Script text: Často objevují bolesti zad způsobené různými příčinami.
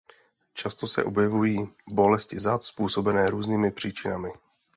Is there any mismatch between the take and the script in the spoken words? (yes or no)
yes